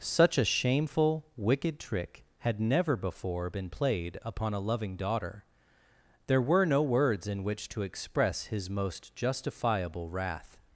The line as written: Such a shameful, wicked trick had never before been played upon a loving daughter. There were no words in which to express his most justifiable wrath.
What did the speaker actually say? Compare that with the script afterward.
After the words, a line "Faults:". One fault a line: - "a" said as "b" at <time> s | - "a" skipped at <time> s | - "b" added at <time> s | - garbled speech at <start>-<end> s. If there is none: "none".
Such a shameful, wicked trick had never before been played upon a loving daughter. There were no words in which to express his most justifiable wrath.
Faults:
none